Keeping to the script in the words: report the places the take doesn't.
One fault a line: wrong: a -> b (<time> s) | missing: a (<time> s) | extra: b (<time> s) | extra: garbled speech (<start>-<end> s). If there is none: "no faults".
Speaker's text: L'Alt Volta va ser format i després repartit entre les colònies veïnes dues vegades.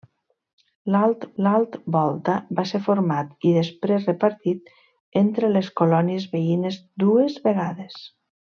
extra: l'alt (1.4 s)